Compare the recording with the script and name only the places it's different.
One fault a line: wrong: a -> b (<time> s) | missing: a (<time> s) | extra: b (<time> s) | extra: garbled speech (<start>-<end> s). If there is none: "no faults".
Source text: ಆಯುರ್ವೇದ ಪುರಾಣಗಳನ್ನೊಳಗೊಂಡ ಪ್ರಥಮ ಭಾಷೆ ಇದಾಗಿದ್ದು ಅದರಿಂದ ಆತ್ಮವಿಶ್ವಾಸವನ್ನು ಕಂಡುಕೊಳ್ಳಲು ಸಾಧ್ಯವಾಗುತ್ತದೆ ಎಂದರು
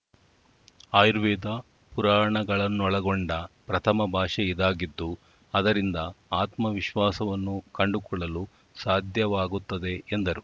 no faults